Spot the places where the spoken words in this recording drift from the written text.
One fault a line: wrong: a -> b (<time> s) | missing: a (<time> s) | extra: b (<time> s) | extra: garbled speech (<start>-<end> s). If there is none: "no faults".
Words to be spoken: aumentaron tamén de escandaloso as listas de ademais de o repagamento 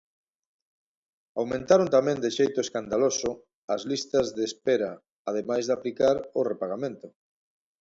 extra: xeito (2.4 s)
extra: espera (4.5 s)
extra: aplicar (5.8 s)